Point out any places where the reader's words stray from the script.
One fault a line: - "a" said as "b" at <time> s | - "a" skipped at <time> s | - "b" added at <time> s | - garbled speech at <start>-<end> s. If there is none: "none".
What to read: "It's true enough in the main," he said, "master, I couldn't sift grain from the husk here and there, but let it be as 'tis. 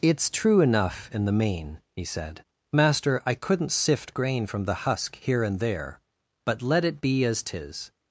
none